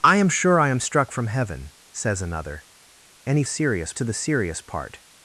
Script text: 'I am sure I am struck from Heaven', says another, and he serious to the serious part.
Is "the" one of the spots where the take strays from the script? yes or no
no